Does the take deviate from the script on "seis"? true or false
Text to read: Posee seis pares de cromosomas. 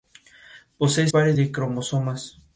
true